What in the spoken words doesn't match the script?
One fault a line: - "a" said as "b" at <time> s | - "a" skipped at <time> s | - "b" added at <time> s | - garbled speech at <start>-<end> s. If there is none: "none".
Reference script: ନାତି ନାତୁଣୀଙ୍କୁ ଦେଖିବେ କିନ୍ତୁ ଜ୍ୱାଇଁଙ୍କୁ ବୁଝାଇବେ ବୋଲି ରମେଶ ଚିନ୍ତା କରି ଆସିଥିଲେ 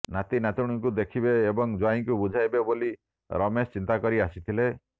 - "କିନ୍ତୁ" said as "ଏବଂ" at 1.4 s